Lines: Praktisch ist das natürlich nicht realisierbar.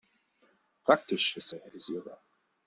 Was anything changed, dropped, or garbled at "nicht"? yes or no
yes